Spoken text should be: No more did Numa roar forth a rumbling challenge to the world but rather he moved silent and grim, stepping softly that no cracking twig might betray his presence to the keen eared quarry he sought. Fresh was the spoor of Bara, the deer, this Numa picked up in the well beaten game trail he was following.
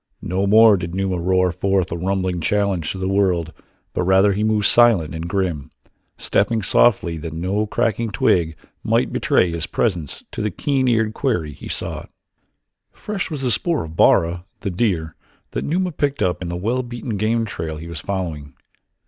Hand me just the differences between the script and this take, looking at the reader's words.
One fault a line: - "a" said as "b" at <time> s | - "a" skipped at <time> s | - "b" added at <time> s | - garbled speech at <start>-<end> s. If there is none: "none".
- "this" said as "that" at 15.5 s